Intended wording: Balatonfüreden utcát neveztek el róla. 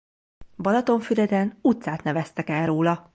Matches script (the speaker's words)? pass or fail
pass